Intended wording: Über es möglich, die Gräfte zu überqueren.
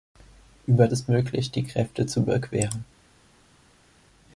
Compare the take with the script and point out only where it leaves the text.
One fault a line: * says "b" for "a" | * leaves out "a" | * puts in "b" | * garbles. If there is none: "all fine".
all fine